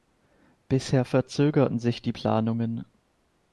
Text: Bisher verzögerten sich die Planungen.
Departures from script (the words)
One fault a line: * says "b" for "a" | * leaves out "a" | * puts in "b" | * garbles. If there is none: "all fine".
all fine